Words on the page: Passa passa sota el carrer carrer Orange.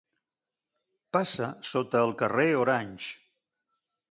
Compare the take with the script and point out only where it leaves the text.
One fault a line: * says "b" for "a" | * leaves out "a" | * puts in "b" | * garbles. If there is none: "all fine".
* leaves out "passa"
* leaves out "carrer"